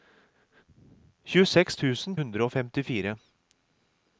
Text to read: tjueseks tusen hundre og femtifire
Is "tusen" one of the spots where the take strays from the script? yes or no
no